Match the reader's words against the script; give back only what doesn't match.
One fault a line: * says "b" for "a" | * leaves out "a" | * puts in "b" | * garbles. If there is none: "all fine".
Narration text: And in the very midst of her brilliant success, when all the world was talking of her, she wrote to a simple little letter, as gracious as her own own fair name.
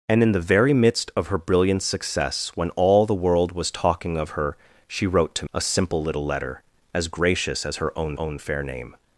all fine